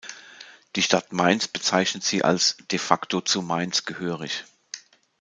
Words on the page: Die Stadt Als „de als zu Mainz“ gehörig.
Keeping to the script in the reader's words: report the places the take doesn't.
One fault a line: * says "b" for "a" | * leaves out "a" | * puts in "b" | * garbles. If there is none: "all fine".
* puts in "Mainz bezeichnet sie"
* says "facto" for "als"